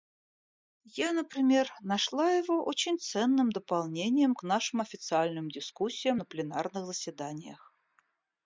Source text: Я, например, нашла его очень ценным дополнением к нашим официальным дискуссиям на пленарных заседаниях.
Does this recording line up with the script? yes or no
yes